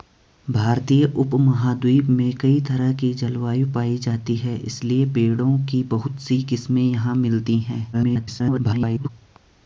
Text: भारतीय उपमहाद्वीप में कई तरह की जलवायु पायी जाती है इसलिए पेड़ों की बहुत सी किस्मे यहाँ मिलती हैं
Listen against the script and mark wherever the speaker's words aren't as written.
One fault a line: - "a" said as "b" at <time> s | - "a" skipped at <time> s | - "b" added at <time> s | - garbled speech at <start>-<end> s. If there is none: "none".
- garbled speech at 7.9-9.1 s